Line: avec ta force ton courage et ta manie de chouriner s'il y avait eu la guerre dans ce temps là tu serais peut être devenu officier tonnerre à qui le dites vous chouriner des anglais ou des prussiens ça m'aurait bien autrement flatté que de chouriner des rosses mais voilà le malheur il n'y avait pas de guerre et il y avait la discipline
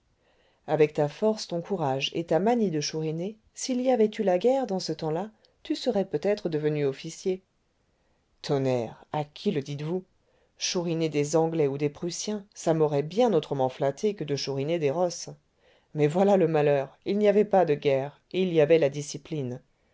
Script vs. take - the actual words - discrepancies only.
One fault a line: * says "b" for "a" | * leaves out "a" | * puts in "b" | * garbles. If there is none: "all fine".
all fine